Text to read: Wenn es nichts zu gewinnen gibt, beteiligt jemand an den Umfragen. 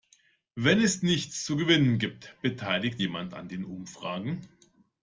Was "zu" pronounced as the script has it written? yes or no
yes